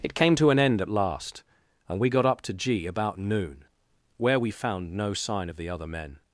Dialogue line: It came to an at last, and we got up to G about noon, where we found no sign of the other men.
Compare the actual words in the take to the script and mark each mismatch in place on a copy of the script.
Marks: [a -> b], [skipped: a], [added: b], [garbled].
It came to an [added: end] at last, and we got up to G about noon, where we found no sign of the other men.